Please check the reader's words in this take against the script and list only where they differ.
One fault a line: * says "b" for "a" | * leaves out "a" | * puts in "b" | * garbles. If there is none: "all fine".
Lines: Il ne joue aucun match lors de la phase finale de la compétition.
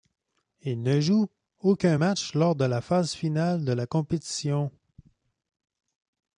all fine